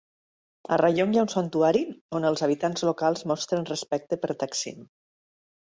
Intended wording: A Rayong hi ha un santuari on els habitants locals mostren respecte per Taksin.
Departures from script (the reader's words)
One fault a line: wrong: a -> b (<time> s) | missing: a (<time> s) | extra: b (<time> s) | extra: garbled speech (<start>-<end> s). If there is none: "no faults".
no faults